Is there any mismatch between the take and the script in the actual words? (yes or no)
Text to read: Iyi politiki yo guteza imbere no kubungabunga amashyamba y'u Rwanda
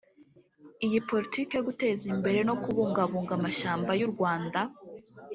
no